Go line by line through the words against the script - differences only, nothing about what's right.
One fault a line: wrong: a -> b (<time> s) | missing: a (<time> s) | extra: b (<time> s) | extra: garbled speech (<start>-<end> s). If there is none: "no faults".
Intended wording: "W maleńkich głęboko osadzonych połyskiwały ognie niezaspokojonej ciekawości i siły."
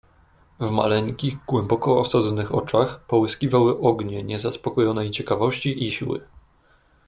extra: oczach (2.5 s)